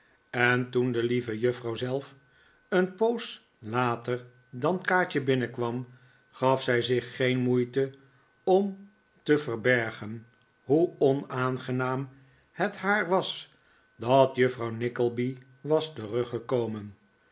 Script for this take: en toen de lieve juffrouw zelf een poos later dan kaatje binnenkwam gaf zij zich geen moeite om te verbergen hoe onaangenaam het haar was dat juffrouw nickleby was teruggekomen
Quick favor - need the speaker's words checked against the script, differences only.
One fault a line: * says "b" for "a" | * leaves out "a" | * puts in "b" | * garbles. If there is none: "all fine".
all fine